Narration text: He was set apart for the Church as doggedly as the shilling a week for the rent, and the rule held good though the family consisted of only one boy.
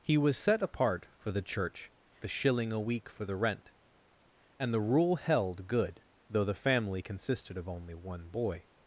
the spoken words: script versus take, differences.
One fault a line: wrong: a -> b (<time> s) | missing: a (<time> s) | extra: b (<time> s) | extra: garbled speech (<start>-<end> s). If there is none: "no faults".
missing: as doggedly as (1.9 s)